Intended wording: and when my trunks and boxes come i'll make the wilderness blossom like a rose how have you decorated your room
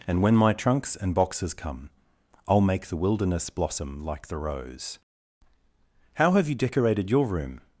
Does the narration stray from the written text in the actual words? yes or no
yes